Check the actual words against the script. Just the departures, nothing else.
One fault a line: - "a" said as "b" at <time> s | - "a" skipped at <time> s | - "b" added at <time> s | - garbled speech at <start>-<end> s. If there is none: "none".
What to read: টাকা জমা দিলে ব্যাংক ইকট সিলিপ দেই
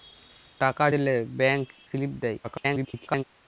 - "জমা" skipped at 0.8 s
- "ইকট" skipped at 1.6 s
- garbled speech at 2.4-3.2 s